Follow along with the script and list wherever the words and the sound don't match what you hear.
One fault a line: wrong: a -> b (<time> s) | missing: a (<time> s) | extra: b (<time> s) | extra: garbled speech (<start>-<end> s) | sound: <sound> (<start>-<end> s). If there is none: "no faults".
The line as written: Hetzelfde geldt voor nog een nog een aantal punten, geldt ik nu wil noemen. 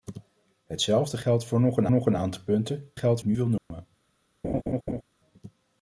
sound: dropout (3.6-3.7 s)
sound: laugh (4.4-5.0 s)